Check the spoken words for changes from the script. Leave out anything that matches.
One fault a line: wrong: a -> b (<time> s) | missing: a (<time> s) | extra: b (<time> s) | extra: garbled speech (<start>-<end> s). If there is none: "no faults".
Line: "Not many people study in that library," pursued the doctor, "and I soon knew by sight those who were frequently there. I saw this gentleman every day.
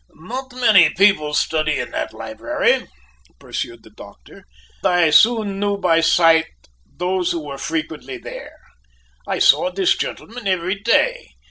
missing: and (4.5 s)